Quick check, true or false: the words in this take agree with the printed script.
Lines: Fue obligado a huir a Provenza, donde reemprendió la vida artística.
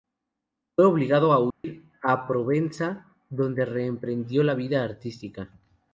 true